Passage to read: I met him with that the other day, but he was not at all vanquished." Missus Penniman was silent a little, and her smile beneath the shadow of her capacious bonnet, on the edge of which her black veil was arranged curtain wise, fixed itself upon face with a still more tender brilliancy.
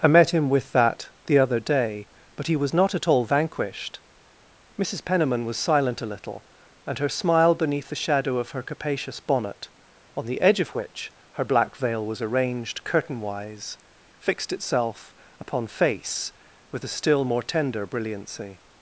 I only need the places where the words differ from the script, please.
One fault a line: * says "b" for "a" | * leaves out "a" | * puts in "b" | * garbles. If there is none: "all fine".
all fine